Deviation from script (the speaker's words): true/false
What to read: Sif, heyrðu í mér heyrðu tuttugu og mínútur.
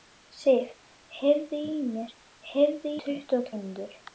false